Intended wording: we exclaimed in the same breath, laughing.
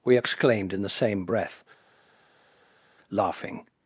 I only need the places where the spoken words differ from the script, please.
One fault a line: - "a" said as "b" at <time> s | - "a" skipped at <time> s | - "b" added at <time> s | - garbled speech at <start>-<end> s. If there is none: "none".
none